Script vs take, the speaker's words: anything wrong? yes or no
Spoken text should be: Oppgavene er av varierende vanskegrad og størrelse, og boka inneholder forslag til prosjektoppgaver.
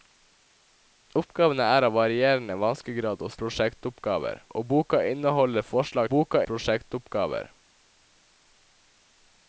yes